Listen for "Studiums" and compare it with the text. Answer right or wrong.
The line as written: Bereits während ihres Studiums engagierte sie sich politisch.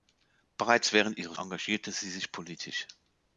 wrong